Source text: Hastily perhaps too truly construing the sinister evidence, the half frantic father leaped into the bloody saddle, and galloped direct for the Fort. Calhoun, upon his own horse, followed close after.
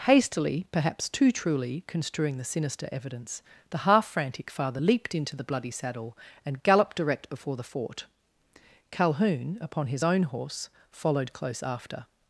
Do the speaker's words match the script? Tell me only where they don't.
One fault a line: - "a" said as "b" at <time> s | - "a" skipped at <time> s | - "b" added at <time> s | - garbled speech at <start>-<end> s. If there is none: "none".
- "for" said as "before" at 7.3 s